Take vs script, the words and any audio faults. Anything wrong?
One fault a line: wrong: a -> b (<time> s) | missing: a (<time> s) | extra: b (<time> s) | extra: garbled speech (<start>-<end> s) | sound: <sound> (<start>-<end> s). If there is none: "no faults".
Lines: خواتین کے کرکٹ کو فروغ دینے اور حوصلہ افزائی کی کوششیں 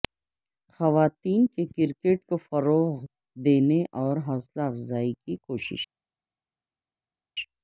no faults